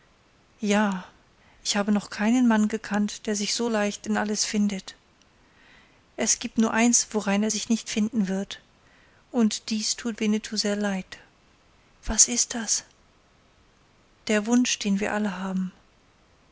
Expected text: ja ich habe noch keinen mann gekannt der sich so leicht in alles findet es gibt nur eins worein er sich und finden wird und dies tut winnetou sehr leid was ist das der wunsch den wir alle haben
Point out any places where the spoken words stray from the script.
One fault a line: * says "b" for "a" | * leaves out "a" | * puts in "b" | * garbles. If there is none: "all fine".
* says "nicht" for "und"